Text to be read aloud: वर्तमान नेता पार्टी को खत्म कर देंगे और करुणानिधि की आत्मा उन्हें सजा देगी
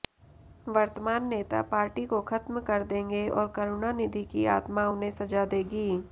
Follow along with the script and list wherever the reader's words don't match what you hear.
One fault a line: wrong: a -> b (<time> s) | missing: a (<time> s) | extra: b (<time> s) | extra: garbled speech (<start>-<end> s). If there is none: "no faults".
no faults